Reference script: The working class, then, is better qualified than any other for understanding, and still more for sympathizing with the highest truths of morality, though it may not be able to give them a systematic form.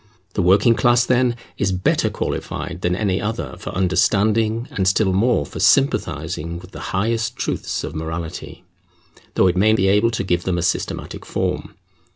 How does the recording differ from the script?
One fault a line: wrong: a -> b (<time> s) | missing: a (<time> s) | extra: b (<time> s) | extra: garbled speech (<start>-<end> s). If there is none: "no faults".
missing: not (9.7 s)